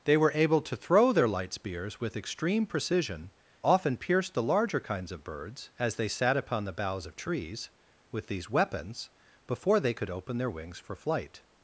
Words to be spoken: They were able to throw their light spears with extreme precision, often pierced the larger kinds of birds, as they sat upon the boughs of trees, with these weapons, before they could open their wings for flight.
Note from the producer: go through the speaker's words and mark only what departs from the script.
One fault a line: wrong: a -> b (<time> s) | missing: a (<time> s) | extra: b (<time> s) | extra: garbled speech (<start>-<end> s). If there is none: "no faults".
no faults